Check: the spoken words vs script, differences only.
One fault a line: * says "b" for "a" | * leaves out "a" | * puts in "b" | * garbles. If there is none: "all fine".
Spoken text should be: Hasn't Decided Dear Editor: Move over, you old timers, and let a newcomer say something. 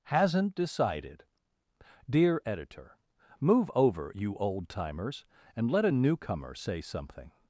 all fine